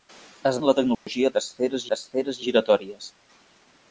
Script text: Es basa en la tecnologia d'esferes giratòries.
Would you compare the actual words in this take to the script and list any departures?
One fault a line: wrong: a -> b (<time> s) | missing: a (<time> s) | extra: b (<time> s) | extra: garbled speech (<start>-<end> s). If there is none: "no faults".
missing: basa (0.6 s)
extra: d'esferes (1.9 s)